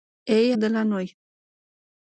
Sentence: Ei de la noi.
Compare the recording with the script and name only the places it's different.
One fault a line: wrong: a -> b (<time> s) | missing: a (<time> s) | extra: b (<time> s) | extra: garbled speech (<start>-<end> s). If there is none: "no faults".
no faults